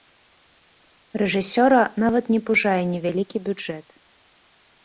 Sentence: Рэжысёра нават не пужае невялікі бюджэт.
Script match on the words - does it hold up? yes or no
yes